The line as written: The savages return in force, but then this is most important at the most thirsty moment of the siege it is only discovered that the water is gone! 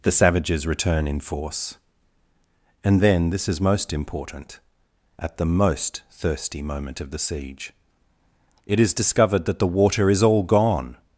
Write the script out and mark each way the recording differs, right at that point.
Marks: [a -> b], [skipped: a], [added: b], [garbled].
The savages return in force, [but -> and] then this is most important at the most thirsty moment of the siege it is [skipped: only] discovered that the water is [added: all] gone!